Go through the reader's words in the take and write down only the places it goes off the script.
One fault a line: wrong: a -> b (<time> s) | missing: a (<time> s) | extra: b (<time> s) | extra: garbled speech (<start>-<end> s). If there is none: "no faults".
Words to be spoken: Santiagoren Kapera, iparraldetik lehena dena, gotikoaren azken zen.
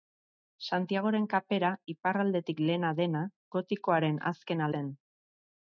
no faults